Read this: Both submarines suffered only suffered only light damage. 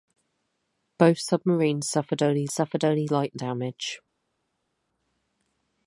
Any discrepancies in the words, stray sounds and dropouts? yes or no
no